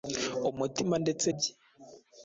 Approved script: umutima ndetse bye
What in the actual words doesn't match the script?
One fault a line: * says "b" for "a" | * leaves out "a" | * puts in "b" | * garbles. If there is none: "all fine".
all fine